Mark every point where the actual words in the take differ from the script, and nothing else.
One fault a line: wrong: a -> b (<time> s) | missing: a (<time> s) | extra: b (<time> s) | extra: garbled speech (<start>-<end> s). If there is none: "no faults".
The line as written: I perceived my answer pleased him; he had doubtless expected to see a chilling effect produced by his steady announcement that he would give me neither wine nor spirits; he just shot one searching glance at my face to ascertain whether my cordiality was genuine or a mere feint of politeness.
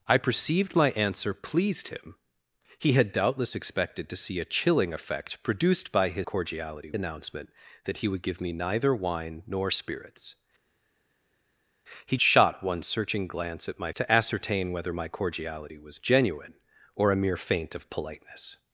wrong: steady -> cordiality (6.2 s)
missing: just (12.2 s)
missing: face (13.9 s)